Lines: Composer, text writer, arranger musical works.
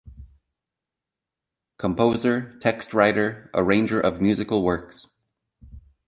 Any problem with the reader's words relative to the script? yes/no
yes